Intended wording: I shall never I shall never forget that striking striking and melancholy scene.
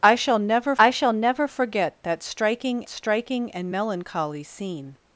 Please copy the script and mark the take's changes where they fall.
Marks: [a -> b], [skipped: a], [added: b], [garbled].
I shall never I shall never forget that striking striking and melancholy scene.